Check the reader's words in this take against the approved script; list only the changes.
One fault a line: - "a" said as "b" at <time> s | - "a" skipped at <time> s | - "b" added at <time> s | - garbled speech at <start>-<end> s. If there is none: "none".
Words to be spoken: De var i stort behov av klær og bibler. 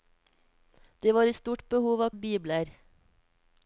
- "klær" skipped at 2.1 s